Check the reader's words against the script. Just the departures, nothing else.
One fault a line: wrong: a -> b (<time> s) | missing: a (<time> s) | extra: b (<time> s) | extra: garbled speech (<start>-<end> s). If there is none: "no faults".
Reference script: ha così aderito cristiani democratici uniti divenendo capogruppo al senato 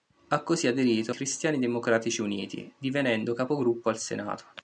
no faults